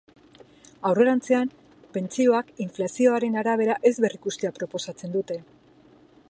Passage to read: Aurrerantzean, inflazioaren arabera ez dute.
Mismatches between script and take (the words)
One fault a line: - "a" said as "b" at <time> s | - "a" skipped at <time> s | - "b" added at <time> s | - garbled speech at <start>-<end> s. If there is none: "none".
- "pentsioak" added at 2.0 s
- "berrikustea proposatzen" added at 4.1 s